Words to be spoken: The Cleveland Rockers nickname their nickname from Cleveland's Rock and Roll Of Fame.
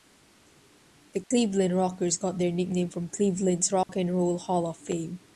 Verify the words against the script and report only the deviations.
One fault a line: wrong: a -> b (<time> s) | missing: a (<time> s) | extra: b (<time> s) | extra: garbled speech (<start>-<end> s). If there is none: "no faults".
wrong: nickname -> got (2.2 s)
extra: Hall (4.4 s)